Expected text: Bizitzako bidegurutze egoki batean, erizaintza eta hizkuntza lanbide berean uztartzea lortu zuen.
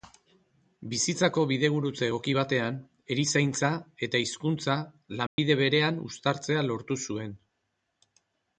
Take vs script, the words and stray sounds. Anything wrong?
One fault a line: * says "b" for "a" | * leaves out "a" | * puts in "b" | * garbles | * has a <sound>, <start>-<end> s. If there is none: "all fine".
* has a dropout, 5.3-5.4 s